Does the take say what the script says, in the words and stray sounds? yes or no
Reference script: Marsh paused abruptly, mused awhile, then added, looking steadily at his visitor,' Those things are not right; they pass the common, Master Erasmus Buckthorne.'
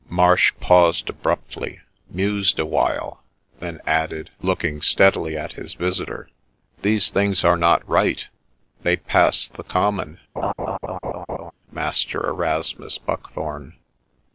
no